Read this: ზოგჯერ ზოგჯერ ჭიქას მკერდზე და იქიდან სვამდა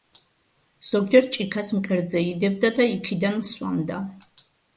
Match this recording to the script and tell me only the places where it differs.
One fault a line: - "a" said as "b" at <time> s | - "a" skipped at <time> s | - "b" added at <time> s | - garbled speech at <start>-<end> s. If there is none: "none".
- "ზოგჯერ" skipped at 1.3 s
- "იდებდა" added at 2.3 s